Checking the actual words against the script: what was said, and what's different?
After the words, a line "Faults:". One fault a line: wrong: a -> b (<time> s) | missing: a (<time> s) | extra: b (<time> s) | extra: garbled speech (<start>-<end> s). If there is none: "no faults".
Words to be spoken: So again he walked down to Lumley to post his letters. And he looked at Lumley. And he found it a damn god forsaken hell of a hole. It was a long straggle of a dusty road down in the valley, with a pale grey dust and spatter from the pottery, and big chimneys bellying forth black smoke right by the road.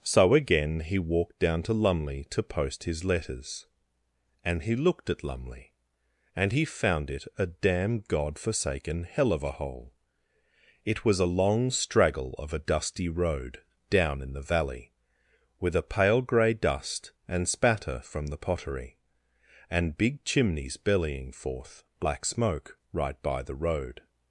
So again he walked down to Lumley to post his letters. And he looked at Lumley. And he found it a damn god forsaken hell of a hole. It was a long straggle of a dusty road down in the valley, with a pale grey dust and spatter from the pottery, and big chimneys bellying forth black smoke right by the road.
Faults:
no faults